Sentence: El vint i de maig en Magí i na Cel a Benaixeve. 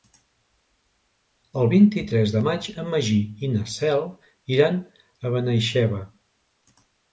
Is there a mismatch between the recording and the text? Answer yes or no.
yes